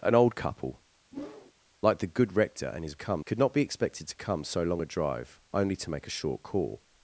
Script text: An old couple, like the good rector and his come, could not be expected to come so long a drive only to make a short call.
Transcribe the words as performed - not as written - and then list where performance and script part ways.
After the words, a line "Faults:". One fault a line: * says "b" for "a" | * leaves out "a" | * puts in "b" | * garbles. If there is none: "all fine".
An old couple, like the good rector and his come, could not be expected to come so long a drive only to make a short call.
Faults:
all fine